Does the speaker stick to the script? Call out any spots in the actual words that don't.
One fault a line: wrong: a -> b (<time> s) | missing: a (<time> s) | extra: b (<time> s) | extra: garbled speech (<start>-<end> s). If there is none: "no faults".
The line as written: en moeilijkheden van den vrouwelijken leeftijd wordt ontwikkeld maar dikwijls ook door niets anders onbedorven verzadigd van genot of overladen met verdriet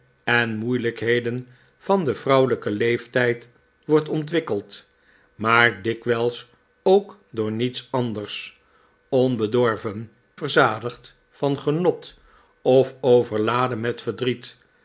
no faults